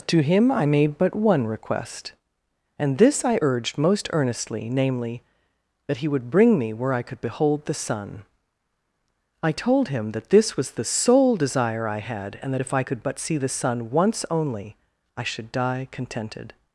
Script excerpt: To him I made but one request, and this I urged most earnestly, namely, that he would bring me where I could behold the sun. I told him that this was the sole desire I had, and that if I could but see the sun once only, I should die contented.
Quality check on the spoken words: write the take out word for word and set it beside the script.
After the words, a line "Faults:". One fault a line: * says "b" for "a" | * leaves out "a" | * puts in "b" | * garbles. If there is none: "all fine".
To him I made but one request, and this I urged most earnestly, namely, that he would bring me where I could behold the sun. I told him that this was the sole desire I had, and that if I could but see the sun once only, I should die contented.
Faults:
all fine